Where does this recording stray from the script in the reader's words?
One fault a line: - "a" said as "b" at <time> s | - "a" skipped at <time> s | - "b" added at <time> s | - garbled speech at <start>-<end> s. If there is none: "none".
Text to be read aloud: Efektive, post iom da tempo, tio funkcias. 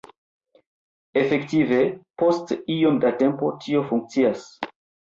none